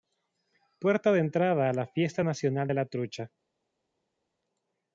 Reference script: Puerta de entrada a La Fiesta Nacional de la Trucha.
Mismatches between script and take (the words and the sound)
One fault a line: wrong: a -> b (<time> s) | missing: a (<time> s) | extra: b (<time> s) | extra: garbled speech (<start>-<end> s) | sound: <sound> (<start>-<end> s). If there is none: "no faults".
no faults